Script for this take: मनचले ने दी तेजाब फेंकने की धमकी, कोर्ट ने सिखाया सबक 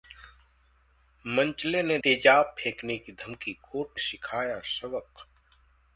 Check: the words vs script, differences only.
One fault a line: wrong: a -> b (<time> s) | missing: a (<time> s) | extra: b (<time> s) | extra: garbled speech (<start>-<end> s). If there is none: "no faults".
missing: दी (2.0 s)
missing: ने (4.0 s)